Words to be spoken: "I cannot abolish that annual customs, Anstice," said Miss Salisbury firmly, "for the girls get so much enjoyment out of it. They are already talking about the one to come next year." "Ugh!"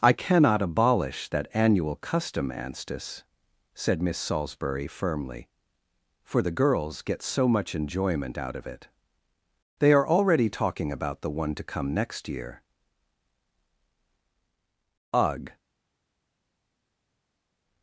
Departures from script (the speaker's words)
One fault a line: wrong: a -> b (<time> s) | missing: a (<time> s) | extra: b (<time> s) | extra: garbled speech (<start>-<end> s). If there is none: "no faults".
wrong: customs -> custom (1.9 s)